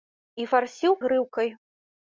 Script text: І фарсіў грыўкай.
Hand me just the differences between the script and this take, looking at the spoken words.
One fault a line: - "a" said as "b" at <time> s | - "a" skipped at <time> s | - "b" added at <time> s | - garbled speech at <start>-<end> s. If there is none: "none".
none